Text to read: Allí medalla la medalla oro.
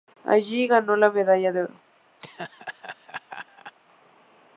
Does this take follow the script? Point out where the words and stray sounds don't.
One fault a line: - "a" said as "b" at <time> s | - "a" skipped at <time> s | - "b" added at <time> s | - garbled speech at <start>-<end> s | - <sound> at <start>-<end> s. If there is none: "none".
- "medalla" said as "ganó" at 0.6 s
- "de" added at 1.5 s
- laugh at 2.2-3.7 s